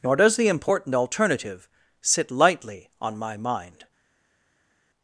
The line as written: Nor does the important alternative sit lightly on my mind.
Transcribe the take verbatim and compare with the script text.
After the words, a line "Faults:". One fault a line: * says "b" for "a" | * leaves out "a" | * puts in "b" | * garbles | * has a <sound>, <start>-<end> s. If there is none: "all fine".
Nor does the important alternative sit lightly on my mind.
Faults:
all fine